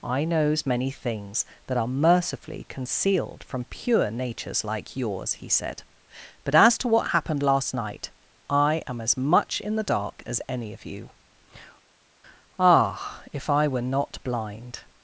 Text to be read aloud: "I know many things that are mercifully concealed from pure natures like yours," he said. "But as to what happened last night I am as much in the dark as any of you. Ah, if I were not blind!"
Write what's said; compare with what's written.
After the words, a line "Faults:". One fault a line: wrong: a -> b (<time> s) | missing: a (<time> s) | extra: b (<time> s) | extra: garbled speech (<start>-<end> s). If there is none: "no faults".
"I knows many things that are mercifully concealed from pure natures like yours," he said. "But as to what happened last night I am as much in the dark as any of you. Ah, if I were not blind!"
Faults:
wrong: know -> knows (0.2 s)